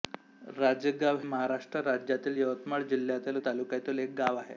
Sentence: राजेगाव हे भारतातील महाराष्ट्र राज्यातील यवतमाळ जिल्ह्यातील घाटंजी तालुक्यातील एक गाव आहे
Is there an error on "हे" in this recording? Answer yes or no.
yes